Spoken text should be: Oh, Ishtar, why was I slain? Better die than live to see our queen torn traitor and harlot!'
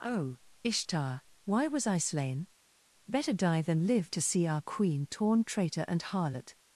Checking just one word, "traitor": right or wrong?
right